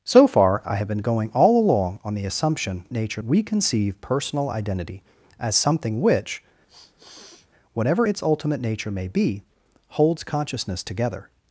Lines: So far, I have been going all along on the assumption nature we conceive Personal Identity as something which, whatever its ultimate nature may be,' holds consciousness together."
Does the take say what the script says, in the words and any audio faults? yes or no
no